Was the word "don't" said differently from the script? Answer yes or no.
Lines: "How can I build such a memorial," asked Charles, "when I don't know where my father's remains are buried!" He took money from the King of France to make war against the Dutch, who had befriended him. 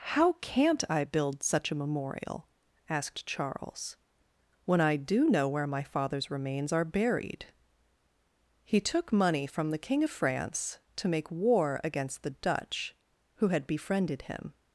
yes